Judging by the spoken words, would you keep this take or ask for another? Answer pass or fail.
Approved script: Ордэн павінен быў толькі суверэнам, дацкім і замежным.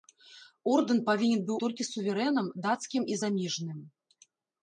pass